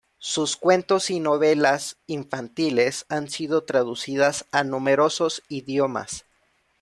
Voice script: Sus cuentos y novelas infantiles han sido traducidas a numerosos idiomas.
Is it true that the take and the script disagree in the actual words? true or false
false